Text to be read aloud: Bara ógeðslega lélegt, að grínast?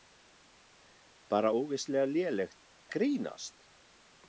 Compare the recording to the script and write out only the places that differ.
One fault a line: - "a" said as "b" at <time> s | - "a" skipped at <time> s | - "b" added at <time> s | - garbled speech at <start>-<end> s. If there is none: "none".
none